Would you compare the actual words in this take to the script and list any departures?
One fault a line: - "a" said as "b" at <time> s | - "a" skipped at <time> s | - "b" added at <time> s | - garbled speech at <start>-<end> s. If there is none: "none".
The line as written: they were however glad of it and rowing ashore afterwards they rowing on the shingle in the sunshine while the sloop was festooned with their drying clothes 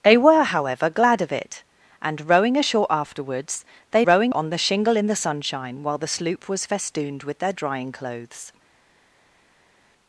none